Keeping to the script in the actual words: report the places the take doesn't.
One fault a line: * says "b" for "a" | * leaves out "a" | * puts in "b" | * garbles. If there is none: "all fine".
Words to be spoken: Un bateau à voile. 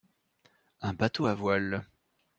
all fine